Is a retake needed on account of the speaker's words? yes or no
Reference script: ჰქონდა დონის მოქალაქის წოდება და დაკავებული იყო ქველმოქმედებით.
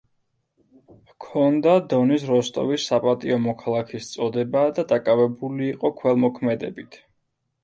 yes